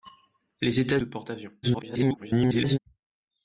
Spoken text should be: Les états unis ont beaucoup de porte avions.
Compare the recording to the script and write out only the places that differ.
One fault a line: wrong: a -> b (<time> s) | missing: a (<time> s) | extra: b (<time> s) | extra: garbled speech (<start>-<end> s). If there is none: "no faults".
missing: unis ont beaucoup (1.0 s)
extra: garbled speech (1.6-2.8 s)